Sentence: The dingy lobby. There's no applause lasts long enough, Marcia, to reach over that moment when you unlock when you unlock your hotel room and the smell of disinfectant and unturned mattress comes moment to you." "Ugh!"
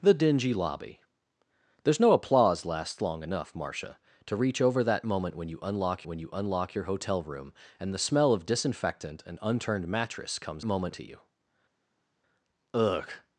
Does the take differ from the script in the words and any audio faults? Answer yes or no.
no